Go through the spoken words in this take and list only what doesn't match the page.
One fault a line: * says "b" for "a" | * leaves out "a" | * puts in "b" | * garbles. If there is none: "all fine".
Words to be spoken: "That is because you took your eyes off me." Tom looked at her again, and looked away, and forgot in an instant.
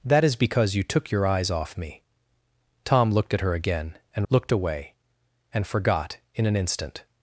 all fine